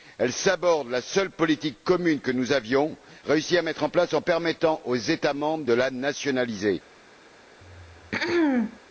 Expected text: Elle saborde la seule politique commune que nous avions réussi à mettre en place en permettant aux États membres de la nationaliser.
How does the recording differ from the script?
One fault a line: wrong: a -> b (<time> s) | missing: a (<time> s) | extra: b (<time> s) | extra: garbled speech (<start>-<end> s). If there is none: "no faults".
no faults